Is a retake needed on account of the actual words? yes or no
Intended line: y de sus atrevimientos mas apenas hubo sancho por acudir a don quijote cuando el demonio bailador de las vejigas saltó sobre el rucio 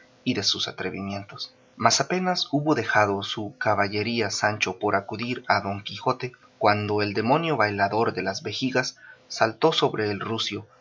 yes